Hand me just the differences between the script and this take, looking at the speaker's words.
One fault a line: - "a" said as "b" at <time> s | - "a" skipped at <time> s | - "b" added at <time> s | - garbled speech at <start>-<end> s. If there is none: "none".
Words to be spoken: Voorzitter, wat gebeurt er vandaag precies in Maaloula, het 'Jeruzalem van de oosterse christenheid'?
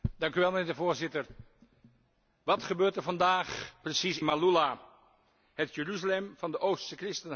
- "in" skipped at 4.2 s